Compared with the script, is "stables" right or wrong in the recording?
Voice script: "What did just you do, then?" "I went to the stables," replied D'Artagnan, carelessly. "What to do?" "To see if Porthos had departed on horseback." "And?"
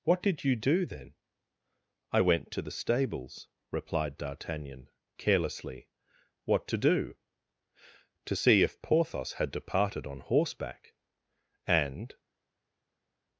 right